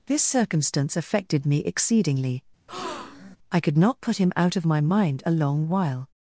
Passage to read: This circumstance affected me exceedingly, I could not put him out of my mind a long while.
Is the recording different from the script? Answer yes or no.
no